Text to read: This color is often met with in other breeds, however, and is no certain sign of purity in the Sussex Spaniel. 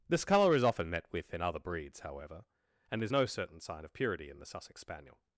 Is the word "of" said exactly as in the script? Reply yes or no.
yes